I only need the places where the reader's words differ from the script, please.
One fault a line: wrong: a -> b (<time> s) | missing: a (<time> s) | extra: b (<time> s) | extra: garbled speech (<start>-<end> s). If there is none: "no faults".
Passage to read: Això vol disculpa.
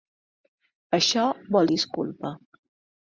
no faults